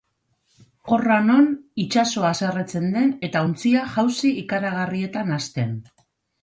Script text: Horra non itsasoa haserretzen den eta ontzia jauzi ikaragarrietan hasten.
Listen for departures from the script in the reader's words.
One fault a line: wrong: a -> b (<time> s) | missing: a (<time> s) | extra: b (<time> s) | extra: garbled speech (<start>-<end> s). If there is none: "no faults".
no faults